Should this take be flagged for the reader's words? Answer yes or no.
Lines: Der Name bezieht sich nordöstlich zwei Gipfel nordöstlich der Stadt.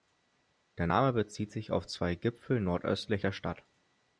yes